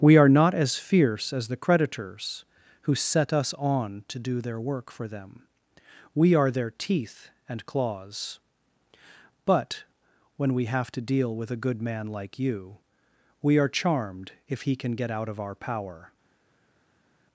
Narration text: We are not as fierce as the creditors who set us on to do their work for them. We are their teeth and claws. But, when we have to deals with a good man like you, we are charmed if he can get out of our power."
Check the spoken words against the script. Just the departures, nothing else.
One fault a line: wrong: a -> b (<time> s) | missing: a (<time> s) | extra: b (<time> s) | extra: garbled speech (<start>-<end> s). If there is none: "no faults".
wrong: deals -> deal (11.0 s)